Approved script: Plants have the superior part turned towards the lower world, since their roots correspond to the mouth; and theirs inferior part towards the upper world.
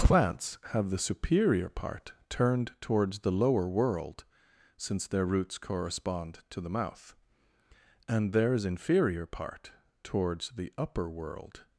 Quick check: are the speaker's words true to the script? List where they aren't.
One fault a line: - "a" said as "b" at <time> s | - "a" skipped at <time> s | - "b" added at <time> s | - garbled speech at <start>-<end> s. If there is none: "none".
none